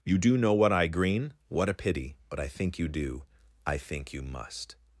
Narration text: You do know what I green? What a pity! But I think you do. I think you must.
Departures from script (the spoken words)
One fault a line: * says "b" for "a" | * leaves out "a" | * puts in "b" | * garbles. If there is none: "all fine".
all fine